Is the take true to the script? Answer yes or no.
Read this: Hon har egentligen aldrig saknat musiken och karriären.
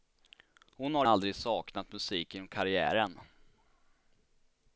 no